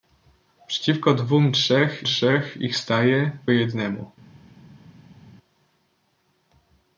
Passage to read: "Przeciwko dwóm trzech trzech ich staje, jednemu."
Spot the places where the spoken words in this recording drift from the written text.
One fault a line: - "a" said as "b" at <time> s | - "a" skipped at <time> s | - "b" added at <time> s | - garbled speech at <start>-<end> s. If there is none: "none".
none